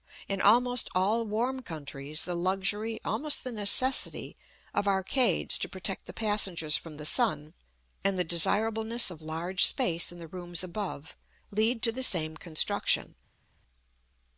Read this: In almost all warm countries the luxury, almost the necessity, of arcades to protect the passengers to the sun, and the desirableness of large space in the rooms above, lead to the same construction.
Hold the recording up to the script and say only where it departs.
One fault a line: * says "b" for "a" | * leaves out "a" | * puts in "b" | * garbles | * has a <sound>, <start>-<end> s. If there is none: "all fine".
* says "from" for "to"